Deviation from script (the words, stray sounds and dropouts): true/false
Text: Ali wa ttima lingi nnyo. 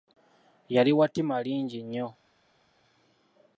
true